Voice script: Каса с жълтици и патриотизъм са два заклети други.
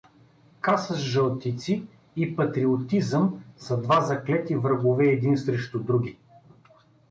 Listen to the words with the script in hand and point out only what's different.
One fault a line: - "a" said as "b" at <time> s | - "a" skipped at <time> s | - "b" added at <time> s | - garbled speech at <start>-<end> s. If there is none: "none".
- "врагове един срещу" added at 4.5 s